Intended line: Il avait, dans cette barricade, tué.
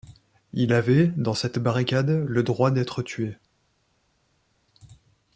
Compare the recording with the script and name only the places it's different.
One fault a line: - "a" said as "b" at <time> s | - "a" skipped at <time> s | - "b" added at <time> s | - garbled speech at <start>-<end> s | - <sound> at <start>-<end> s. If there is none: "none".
- "le droit d'être" added at 2.1 s